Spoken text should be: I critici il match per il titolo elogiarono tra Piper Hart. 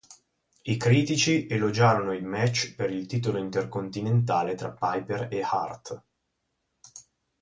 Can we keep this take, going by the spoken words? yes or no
no